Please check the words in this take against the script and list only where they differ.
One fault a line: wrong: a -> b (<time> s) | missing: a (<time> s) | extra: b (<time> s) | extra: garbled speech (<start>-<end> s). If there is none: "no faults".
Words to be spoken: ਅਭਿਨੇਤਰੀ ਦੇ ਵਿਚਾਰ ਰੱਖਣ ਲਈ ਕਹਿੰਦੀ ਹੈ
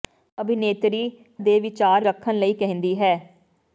no faults